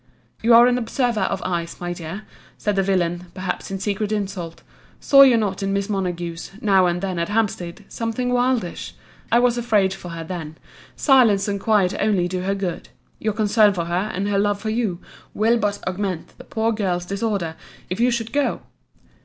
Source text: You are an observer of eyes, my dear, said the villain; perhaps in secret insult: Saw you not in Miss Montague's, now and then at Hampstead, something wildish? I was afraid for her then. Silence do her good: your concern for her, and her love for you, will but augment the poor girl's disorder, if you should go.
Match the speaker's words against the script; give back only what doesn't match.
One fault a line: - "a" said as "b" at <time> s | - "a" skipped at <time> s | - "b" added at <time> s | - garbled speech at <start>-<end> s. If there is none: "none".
- "and quiet only" added at 11.5 s